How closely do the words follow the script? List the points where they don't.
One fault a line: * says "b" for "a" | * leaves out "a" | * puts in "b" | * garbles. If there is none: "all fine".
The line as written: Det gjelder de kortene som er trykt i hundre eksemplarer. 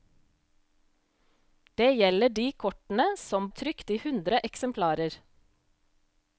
all fine